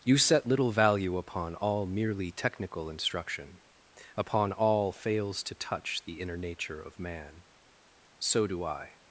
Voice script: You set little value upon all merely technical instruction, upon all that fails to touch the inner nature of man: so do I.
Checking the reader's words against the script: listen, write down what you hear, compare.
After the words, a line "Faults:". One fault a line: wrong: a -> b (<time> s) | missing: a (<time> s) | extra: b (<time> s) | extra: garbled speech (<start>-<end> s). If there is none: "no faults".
You set little value upon all merely technical instruction, upon all fails to touch the inner nature of man: so do I.
Faults:
missing: that (4.9 s)